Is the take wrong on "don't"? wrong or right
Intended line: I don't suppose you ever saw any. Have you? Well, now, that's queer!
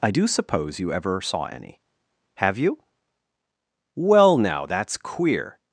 wrong